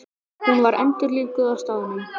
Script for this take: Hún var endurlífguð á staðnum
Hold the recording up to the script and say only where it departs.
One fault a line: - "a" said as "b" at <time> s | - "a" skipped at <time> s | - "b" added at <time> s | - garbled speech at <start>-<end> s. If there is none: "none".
none